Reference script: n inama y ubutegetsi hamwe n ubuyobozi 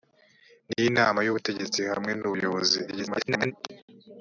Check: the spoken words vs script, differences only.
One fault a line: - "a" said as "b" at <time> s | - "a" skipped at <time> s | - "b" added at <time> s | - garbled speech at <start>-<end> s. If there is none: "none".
- garbled speech at 2.9-3.5 s